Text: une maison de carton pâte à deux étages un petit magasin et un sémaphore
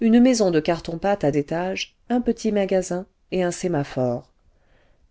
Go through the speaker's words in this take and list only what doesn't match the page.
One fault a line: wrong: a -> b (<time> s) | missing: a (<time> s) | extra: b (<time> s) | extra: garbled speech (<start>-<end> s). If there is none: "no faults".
missing: deux (1.3 s)